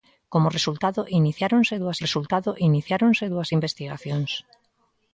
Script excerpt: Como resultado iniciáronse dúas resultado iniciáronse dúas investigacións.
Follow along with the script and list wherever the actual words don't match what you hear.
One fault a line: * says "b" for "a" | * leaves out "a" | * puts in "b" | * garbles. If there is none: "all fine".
all fine